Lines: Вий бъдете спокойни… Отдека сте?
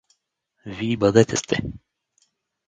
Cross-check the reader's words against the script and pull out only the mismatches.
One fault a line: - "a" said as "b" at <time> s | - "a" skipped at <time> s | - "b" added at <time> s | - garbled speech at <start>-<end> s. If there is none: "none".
- "спокойни Отдека" skipped at 1.4 s